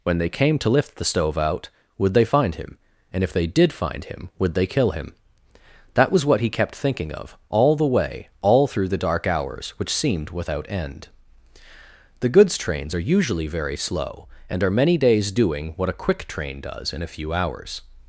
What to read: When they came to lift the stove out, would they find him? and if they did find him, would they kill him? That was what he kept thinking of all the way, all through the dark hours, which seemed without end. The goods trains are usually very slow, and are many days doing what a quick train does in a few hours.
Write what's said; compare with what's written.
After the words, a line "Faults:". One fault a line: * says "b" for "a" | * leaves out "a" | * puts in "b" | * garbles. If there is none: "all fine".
When they came to lift the stove out, would they find him? and if they did find him, would they kill him? That was what he kept thinking of all the way, all through the dark hours, which seemed without end. The goods trains are usually very slow, and are many days doing what a quick train does in a few hours.
Faults:
all fine